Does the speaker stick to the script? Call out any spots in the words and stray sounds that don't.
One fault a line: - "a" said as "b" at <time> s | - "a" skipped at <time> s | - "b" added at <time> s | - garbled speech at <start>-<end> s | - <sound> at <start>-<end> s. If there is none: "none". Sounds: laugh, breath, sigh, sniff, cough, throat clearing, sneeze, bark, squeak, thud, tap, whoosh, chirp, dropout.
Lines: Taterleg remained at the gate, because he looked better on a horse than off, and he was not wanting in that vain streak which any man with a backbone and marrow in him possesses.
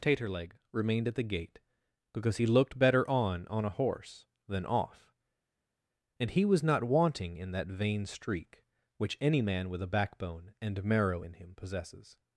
- "on" added at 3.5 s